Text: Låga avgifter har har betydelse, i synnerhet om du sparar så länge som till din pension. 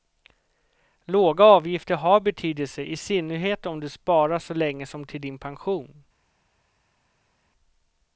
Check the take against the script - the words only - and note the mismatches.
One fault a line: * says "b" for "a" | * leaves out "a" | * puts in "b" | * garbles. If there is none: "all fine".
* leaves out "har"